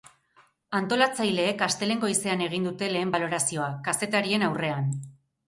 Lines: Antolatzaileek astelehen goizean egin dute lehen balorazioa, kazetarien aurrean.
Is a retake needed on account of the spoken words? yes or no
no